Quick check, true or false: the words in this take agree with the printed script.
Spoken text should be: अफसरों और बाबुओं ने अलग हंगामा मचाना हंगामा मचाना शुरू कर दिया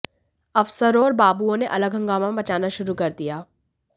false